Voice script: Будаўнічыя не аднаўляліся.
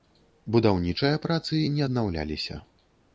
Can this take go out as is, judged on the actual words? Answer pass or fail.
fail